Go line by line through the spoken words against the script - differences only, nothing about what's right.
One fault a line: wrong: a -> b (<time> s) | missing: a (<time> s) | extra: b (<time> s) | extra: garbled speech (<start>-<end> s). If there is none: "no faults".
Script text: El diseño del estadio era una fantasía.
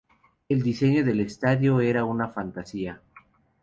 no faults